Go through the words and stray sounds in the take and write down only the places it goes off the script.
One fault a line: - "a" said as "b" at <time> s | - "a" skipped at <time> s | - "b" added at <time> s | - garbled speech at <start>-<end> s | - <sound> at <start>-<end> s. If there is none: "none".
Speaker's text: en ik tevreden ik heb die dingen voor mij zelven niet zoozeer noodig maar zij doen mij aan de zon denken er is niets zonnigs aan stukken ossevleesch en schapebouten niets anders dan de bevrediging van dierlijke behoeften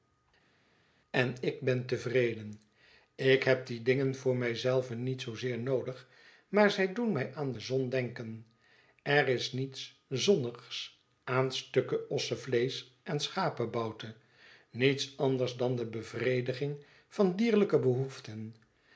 - "ben" added at 1.6 s